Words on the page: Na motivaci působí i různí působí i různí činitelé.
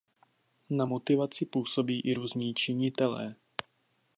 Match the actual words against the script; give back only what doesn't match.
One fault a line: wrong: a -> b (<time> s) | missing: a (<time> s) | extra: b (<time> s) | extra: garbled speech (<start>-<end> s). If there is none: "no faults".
missing: působí i různí (2.5 s)